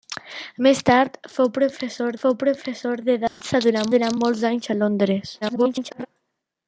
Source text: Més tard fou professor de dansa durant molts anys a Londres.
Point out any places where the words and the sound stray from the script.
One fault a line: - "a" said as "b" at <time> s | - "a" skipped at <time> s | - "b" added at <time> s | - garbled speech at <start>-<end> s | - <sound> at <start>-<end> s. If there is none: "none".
- "fou professor" added at 2.2 s
- dropout at 3.3-3.4 s
- "durant" added at 3.9 s
- garbled speech at 5.4-6.1 s